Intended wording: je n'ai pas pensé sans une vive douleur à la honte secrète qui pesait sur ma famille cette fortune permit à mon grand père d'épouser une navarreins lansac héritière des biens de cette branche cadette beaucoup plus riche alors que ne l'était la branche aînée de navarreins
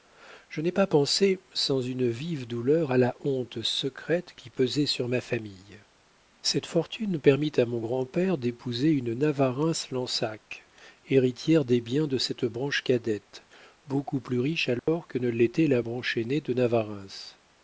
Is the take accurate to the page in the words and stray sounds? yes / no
no